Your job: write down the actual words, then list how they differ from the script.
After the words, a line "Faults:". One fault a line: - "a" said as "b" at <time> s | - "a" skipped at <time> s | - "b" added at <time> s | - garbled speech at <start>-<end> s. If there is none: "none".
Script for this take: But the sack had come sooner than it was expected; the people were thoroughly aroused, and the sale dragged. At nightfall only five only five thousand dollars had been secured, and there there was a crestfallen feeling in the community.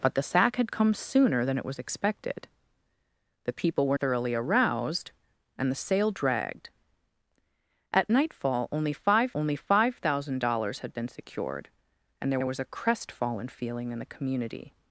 But the sack had come sooner than it was expected; the people were thoroughly aroused, and the sale dragged. At nightfall only five only five thousand dollars had been secured, and there there was a crestfallen feeling in the community.
Faults:
none